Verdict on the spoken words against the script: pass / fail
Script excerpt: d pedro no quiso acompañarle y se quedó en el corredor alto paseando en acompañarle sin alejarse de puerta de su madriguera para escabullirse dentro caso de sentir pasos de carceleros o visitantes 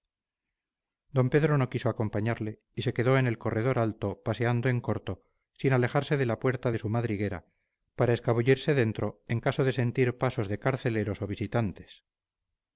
fail